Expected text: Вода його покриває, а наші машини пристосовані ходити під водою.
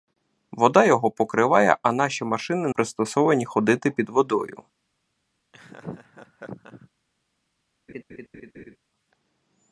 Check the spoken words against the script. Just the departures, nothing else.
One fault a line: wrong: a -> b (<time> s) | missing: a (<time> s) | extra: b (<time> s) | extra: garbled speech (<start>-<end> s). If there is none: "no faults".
no faults